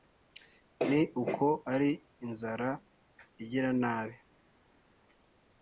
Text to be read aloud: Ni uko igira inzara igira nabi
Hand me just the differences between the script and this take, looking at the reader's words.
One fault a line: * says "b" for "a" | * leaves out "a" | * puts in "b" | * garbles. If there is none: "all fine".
* says "ari" for "igira"